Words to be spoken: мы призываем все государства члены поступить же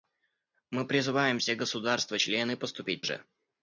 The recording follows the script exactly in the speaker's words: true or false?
true